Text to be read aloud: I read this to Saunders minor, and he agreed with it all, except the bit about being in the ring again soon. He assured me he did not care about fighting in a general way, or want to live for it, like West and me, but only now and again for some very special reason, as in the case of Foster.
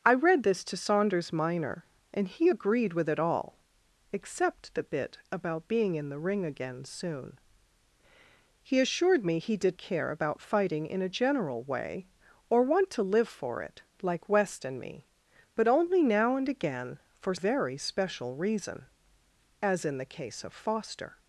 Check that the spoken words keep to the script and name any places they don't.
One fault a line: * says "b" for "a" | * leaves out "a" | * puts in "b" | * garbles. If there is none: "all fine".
* leaves out "not"
* leaves out "some"